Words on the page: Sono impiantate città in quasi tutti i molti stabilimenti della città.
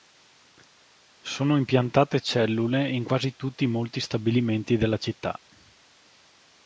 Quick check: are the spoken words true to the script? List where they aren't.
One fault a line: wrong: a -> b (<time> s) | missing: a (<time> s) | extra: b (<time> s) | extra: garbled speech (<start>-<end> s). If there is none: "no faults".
wrong: città -> cellule (2.2 s)